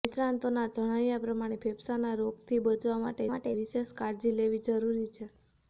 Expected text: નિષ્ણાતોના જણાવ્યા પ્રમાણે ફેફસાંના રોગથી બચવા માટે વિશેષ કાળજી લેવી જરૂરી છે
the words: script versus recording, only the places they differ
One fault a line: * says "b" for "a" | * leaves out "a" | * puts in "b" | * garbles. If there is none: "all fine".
* puts in "માટે"